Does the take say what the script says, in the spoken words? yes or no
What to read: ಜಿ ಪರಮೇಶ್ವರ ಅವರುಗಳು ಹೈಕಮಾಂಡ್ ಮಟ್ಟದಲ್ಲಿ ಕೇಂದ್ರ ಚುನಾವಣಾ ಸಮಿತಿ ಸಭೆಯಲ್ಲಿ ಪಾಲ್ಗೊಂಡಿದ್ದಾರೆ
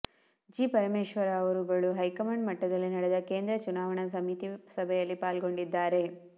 no